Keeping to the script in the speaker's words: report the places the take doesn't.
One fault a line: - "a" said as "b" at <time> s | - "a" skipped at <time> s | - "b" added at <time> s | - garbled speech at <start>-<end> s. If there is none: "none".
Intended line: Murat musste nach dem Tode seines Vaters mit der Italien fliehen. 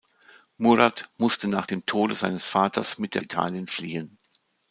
none